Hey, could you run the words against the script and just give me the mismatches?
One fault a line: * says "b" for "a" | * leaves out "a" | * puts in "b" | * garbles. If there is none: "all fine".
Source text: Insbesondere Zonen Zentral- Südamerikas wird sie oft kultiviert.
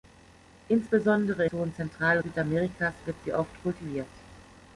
all fine